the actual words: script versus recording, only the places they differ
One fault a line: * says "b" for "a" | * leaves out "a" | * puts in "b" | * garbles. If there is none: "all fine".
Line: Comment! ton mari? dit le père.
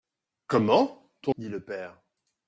* leaves out "mari"